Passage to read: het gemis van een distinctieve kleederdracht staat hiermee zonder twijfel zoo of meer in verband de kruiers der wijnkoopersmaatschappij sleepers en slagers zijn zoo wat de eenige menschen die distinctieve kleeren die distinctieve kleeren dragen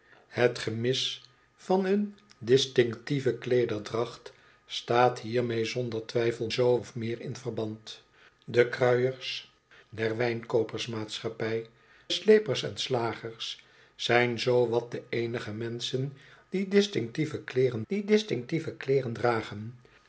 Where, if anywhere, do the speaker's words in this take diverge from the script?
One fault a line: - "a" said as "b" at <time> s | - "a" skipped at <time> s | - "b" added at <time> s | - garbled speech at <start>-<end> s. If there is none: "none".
none